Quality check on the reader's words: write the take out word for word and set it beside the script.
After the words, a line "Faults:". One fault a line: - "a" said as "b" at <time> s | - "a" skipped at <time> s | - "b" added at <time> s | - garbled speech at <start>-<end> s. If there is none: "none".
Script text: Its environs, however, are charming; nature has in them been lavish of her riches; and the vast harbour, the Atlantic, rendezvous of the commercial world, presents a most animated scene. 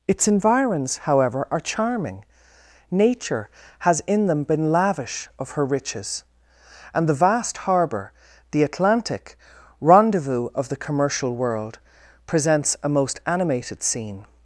Its environs, however, are charming; nature has in them been lavish of her riches; and the vast harbour, the Atlantic, rendezvous of the commercial world, presents a most animated scene.
Faults:
none